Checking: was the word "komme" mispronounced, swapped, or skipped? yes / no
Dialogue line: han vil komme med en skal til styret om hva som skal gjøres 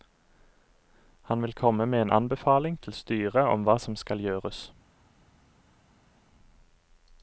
no